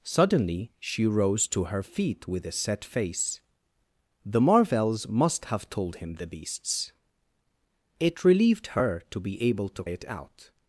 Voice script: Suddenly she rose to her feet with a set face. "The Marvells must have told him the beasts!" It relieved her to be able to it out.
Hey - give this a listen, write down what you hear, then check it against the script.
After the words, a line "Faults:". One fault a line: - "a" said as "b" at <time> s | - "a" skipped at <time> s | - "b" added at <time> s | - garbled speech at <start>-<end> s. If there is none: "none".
Suddenly she rose to her feet with a set face. "The Marvells must have told him the beasts!" It relieved her to be able to it out.
Faults:
none